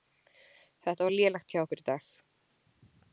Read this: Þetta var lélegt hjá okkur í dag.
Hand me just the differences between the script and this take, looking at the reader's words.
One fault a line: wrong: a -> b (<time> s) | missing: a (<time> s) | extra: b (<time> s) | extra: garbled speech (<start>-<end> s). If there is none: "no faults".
no faults